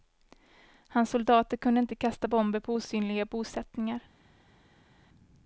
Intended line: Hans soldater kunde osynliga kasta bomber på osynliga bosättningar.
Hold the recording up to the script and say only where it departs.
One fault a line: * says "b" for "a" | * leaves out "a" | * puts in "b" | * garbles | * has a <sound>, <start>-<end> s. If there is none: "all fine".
* says "inte" for "osynliga"